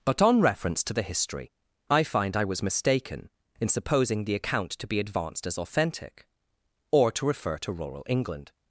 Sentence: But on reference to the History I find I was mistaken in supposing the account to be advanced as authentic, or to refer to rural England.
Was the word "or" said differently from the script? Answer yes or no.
no